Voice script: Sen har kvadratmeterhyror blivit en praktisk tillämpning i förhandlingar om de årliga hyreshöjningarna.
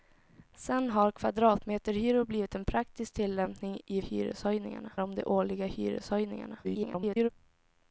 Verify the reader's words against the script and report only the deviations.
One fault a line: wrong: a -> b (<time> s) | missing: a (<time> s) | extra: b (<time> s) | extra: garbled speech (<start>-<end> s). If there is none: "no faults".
wrong: förhandlingar -> hyreshöjningarna (4.0 s)
extra: garbled speech (6.6-7.3 s)